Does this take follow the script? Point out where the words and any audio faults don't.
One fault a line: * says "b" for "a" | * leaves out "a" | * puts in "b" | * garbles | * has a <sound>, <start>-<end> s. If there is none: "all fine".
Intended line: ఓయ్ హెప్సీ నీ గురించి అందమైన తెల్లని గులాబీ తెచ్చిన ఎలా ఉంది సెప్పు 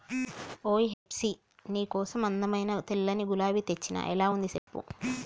* has a dropout, 0.9-1.1 s
* says "కోసం" for "గురించి"
* has a dropout, 4.6-4.7 s